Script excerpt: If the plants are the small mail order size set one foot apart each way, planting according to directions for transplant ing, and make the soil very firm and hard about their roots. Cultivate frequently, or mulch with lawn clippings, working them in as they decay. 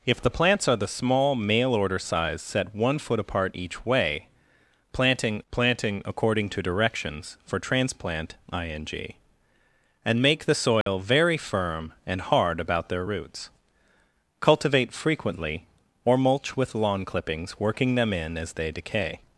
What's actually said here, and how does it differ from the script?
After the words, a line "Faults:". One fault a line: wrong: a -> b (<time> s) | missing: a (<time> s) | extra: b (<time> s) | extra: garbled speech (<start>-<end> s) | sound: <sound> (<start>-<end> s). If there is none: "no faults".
If the plants are the small mail order size set one foot apart each way, planting planting according to directions for transplant ing, and make the soil very firm and hard about their roots. Cultivate frequently, or mulch with lawn clippings, working them in as they decay.
Faults:
extra: planting (5.5 s)
sound: dropout (10.8-10.9 s)